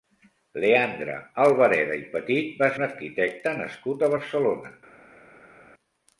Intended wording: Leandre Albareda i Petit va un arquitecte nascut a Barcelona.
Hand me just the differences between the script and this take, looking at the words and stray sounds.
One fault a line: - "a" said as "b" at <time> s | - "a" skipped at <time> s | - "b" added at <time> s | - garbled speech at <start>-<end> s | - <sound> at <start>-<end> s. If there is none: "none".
none